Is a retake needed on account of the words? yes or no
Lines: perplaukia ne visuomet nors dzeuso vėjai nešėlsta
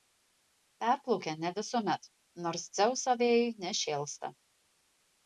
no